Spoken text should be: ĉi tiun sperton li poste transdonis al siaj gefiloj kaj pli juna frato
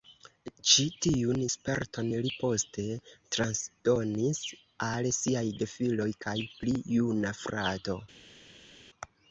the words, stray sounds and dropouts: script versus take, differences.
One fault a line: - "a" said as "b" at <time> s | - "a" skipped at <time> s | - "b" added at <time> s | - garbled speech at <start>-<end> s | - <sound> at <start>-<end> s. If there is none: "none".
none